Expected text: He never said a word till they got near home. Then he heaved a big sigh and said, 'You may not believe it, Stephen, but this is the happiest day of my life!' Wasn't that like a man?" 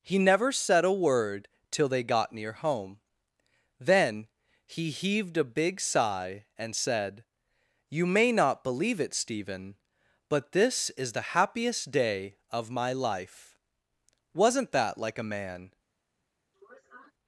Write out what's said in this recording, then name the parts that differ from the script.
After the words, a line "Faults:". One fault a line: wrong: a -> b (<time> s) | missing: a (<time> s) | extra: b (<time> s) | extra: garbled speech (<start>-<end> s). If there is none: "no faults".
He never said a word till they got near home. Then he heaved a big sigh and said, 'You may not believe it, Stephen, but this is the happiest day of my life!' Wasn't that like a man?"
Faults:
no faults